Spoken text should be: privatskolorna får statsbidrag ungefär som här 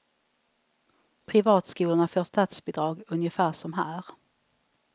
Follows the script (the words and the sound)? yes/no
yes